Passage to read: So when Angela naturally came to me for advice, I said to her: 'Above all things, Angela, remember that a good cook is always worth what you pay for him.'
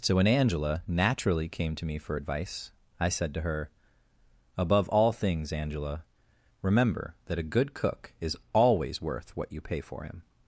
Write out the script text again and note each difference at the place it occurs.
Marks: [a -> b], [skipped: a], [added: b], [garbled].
So when Angela naturally came to me for advice, I said to her: 'Above all things, Angela, remember that a good cook is always worth what you pay for him.'